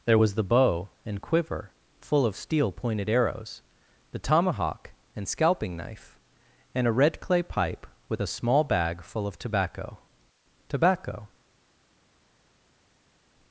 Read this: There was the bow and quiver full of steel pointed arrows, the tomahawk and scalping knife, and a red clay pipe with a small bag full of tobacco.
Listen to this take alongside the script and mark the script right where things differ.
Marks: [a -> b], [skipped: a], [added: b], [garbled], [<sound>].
There was the bow and quiver full of steel pointed arrows, the tomahawk and scalping knife, and a red clay pipe with a small bag full of tobacco. [added: tobacco]